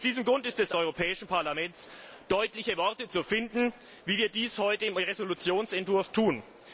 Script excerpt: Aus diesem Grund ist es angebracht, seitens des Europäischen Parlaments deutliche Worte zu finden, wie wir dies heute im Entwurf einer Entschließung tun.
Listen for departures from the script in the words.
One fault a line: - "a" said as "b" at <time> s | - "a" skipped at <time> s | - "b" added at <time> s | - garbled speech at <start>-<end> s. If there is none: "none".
- "angebracht seitens des" skipped at 0.7 s